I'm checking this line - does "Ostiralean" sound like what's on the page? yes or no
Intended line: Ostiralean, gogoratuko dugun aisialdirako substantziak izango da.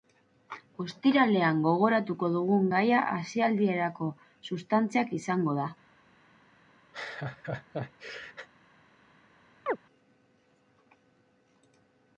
yes